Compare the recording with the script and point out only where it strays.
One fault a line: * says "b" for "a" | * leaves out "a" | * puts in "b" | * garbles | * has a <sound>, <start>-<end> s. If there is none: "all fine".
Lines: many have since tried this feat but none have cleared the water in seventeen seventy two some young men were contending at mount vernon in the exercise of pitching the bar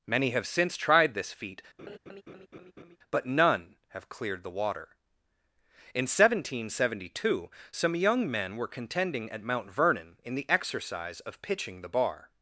* has a laugh, 1.8-3.0 s